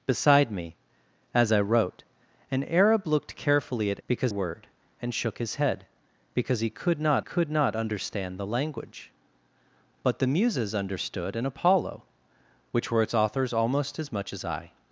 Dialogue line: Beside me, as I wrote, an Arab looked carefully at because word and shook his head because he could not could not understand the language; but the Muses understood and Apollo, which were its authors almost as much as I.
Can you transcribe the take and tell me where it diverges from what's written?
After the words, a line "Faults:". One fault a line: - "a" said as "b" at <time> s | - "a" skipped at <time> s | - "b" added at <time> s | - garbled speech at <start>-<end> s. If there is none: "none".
Beside me, as I wrote, an Arab looked carefully at because word and shook his head because he could not could not understand the language; but the Muses understood and Apollo, which were its authors almost as much as I.
Faults:
none